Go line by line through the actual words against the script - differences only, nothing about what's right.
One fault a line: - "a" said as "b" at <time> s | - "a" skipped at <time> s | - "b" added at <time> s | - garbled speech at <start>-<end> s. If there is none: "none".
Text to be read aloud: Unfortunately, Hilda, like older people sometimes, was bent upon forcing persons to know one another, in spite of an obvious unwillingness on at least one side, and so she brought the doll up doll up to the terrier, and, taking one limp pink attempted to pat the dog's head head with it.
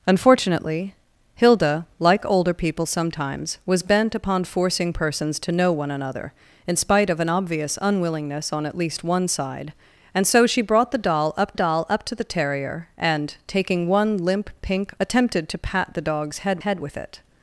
none